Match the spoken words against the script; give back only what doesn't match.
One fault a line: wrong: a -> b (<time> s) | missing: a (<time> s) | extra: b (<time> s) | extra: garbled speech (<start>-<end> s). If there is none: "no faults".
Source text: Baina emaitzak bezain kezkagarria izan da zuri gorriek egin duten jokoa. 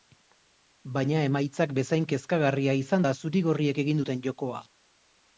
no faults